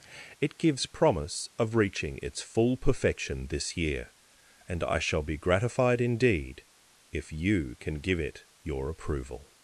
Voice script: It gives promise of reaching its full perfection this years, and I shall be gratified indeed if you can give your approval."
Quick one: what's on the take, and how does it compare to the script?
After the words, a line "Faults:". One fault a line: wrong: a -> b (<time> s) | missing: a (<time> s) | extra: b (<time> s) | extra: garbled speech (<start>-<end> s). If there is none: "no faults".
It gives promise of reaching its full perfection this year, and I shall be gratified indeed if you can give it your approval."
Faults:
wrong: years -> year (3.8 s)
extra: it (8.2 s)